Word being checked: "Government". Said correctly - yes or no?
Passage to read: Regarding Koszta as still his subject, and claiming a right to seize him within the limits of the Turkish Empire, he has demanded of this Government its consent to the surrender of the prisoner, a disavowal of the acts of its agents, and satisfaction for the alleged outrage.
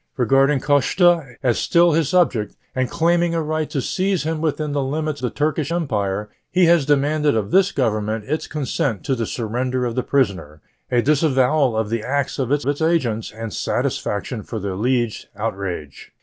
yes